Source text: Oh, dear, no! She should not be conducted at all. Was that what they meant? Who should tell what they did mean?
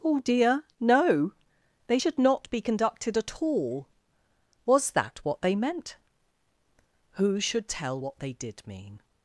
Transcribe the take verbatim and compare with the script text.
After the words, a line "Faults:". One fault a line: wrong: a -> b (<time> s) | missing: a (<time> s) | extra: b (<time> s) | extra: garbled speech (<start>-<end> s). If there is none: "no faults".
Oh, dear, no! They should not be conducted at all. Was that what they meant? Who should tell what they did mean?
Faults:
wrong: She -> They (1.9 s)